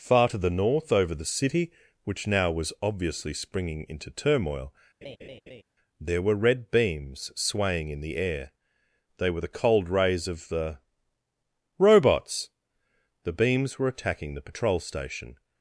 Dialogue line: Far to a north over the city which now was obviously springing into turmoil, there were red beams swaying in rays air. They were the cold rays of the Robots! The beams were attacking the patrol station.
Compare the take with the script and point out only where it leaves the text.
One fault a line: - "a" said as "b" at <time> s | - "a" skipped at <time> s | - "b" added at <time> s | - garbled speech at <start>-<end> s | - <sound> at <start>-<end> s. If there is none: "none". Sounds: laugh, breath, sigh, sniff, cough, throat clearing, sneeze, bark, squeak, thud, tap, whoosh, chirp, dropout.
- "a" said as "the" at 0.4 s
- laugh at 5.0-5.6 s
- "rays" said as "the" at 8.0 s